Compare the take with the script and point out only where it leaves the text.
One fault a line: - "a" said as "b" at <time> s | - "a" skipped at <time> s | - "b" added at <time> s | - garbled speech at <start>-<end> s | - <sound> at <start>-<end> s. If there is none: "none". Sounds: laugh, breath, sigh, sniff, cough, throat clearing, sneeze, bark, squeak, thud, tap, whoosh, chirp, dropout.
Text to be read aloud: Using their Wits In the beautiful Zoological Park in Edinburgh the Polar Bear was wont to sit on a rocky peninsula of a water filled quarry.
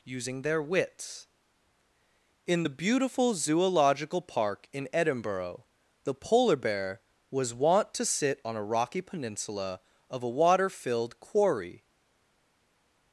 none